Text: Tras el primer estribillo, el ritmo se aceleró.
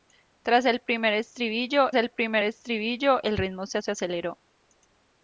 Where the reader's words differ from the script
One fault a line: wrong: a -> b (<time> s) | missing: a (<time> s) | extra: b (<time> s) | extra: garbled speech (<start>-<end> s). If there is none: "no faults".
extra: primer estribillo el (2.1 s)
extra: se (3.8 s)